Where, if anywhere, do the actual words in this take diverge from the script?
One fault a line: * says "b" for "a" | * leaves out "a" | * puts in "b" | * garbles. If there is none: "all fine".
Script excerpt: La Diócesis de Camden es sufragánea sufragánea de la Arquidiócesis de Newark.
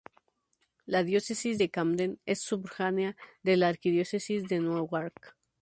* leaves out "sufragánea"